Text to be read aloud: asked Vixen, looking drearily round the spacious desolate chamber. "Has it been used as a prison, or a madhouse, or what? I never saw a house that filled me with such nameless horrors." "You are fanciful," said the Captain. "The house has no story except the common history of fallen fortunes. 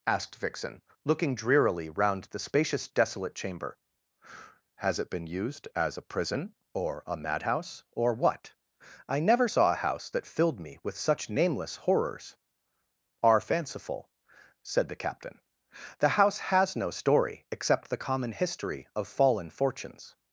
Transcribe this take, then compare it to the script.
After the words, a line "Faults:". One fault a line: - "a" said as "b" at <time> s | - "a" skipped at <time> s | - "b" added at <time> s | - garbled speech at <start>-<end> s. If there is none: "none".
asked Vixen, looking drearily round the spacious desolate chamber. "Has it been used as a prison, or a madhouse, or what? I never saw a house that filled me with such nameless horrors." "are fanciful," said the Captain. "The house has no story except the common history of fallen fortunes.
Faults:
- "You" skipped at 12.4 s